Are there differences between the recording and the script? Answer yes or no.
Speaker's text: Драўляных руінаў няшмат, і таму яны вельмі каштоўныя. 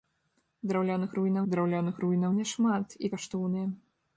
yes